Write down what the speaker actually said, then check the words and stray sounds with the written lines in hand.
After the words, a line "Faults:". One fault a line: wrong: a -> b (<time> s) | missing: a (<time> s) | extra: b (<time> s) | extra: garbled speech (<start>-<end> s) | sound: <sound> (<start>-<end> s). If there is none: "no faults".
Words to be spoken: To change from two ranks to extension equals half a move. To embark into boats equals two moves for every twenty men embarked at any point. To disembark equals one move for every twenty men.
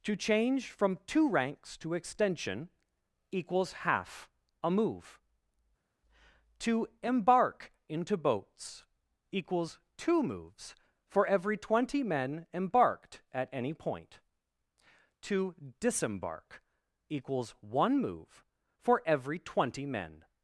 To change from two ranks to extension equals half a move. To embark into boats equals two moves for every twenty men embarked at any point. To disembark equals one move for every twenty men.
Faults:
no faults